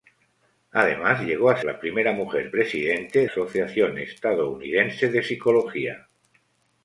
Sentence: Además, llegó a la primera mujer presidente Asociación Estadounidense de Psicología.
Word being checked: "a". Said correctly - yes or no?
yes